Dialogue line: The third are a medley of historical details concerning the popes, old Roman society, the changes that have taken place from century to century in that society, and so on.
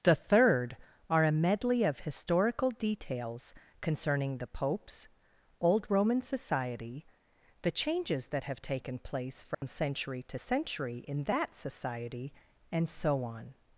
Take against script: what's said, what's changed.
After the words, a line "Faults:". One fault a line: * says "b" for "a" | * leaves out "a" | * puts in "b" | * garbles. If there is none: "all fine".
The third are a medley of historical details concerning the popes, old Roman society, the changes that have taken place from century to century in that society, and so on.
Faults:
all fine